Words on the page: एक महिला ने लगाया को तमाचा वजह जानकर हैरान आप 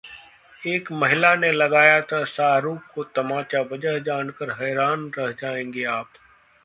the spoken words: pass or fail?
fail